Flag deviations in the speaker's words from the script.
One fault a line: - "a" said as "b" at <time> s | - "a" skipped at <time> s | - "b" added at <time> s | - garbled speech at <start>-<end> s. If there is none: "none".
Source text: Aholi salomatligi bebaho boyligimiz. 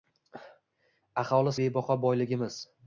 - "salomatligi" skipped at 1.6 s